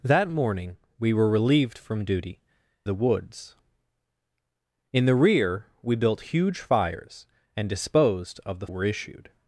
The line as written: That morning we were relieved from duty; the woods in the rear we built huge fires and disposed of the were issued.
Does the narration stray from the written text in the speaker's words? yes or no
no